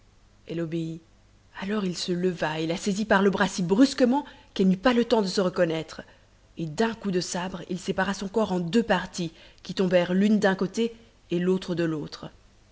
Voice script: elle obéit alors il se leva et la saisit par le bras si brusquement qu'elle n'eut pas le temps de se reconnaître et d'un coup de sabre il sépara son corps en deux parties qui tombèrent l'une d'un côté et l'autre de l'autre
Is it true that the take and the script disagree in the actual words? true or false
false